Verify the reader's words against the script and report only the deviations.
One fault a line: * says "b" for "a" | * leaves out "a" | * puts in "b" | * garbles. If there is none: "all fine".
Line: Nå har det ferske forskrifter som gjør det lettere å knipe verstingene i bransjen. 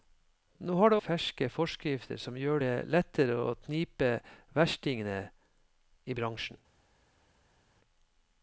all fine